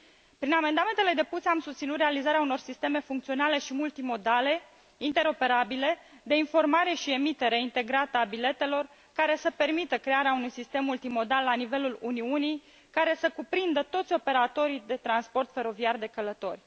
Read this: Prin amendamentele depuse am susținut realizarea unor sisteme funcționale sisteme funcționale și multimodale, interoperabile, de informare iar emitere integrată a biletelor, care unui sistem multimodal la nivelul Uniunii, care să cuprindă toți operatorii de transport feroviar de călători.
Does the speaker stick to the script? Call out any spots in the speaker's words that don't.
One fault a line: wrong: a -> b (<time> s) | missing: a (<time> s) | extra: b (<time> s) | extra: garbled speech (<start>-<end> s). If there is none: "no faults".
missing: sisteme funcționale (3.6 s)
wrong: iar -> și (6.9 s)
extra: să permită crearea (9.3 s)